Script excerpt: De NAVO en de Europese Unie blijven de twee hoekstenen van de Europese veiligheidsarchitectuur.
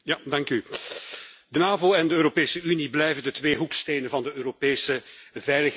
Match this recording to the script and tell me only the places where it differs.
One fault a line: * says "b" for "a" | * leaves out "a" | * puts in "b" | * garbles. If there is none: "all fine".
all fine